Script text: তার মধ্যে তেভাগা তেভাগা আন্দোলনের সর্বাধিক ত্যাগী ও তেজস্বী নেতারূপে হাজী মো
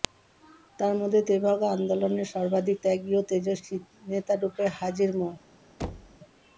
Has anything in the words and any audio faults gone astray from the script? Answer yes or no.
yes